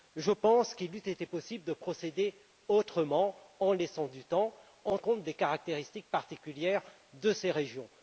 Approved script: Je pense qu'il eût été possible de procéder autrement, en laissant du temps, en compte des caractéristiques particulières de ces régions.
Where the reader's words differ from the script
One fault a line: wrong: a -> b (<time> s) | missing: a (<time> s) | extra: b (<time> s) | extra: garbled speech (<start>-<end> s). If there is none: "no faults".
no faults